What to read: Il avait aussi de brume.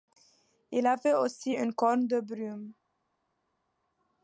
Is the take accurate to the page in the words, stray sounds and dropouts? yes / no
no